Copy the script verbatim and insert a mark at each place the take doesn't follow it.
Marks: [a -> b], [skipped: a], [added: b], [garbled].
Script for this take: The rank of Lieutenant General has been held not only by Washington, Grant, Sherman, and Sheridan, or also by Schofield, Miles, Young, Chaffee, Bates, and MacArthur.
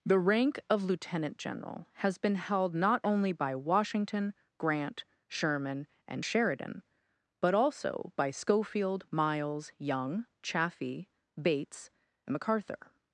The rank of Lieutenant General has been held not only by Washington, Grant, Sherman, and Sheridan, [or -> but] also by Schofield, Miles, Young, Chaffee, Bates, and MacArthur.